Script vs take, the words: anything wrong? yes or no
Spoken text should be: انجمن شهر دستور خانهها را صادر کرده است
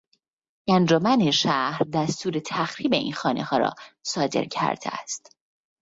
yes